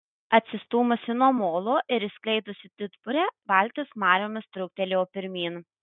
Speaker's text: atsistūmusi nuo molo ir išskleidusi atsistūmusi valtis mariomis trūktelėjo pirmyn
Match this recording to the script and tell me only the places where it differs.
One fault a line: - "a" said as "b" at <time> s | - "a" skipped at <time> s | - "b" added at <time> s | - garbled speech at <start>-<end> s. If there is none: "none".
- "atsistūmusi" said as "didburę" at 2.8 s